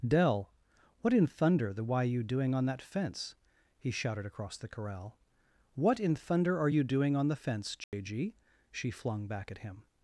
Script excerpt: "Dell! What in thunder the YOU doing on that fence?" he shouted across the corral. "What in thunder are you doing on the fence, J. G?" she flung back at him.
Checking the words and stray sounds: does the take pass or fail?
fail